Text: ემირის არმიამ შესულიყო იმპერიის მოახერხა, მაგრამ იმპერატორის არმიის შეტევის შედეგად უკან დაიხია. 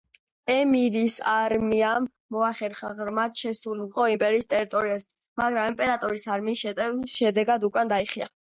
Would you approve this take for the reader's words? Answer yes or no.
no